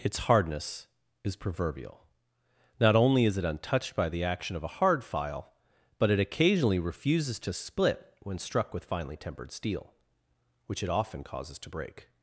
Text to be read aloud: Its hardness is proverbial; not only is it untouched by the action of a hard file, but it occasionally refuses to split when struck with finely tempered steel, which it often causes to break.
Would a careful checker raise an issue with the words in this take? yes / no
no